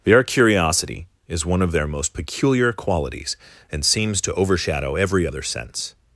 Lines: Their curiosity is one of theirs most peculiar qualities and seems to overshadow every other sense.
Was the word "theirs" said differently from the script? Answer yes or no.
yes